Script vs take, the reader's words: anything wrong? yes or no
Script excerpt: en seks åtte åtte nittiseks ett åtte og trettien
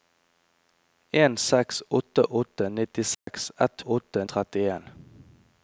no